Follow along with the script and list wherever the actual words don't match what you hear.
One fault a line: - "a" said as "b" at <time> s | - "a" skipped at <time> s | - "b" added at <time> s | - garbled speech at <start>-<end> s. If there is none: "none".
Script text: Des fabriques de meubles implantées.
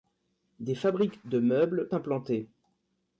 none